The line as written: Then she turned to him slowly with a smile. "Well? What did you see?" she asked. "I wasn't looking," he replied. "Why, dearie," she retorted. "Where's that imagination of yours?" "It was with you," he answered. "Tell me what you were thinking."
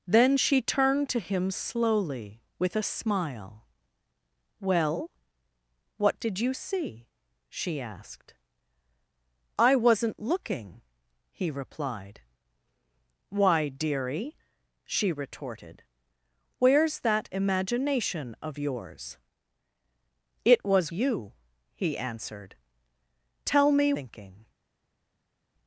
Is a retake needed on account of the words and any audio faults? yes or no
yes